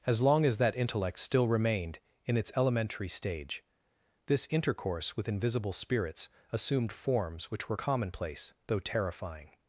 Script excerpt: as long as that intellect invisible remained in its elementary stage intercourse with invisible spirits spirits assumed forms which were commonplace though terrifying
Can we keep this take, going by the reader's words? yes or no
no